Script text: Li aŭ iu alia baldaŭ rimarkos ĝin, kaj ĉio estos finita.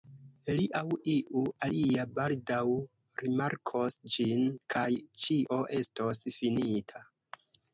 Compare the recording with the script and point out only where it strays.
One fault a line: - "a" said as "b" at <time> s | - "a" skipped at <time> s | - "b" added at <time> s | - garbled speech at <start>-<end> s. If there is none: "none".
none